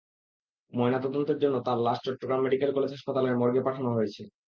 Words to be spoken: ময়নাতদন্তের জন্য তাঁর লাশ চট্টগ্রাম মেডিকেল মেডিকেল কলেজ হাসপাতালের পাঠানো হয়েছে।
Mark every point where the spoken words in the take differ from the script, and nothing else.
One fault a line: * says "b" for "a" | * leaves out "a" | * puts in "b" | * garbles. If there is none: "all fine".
* leaves out "মেডিকেল"
* puts in "মর্গে"